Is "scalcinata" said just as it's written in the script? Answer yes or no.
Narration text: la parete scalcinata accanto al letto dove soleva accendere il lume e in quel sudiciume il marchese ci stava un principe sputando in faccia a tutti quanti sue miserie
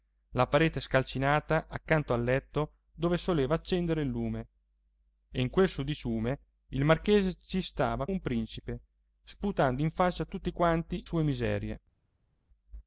yes